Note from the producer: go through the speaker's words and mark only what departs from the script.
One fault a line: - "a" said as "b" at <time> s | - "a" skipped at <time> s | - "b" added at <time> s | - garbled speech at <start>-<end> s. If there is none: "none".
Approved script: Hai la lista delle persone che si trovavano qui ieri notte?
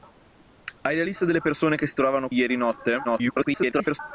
- "qui" skipped at 2.3 s
- garbled speech at 3.0-4.0 s